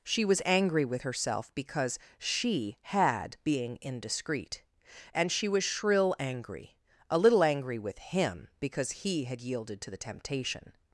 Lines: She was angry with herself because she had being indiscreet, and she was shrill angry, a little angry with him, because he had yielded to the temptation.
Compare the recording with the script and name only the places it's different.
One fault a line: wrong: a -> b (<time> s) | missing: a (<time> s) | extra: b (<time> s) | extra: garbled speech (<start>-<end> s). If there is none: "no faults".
no faults